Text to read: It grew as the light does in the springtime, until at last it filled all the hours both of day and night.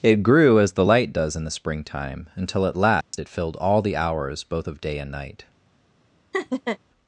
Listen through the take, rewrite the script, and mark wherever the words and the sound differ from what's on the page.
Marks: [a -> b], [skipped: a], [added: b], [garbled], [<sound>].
It grew as the light does in the springtime, until at last [dropout] it filled all the hours both of day and night. [laugh]